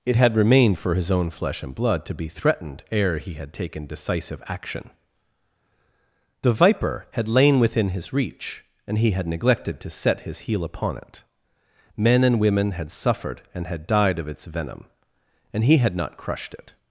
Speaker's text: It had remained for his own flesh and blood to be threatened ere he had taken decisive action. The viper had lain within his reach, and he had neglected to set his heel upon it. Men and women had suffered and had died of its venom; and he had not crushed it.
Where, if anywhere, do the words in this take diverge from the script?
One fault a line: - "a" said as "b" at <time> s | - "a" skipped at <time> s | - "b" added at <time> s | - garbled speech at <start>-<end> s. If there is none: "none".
none